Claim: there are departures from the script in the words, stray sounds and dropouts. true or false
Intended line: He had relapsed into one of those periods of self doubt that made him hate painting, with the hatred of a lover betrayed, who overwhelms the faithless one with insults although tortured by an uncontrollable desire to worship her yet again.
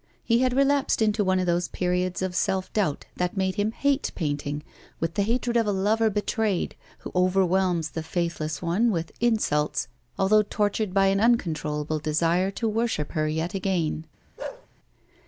true